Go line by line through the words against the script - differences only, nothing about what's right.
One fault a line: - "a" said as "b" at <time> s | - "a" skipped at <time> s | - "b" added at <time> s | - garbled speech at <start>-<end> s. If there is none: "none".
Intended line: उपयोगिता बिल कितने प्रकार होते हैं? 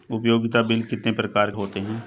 none